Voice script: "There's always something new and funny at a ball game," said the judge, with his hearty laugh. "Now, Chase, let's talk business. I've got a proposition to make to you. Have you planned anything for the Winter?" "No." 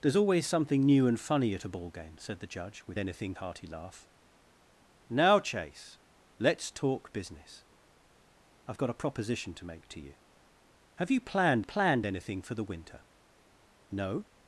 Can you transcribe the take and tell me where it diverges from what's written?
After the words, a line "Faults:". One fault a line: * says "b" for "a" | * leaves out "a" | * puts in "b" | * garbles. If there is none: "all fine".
"There's always something new and funny at a ball game," said the judge, with anything hearty laugh. "Now, Chase, let's talk business. I've got a proposition to make to you. Have you planned planned anything for the Winter?" "No."
Faults:
* says "anything" for "his"
* puts in "planned"